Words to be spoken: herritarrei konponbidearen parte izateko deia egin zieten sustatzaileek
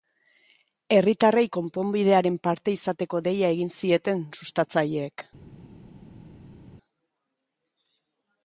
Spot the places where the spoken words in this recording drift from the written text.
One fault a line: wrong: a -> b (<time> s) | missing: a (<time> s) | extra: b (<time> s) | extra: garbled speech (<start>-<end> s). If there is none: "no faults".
no faults